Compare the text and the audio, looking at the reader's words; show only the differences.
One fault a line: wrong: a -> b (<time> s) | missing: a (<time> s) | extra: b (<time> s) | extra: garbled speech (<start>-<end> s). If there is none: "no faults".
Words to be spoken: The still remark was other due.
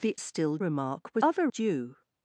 no faults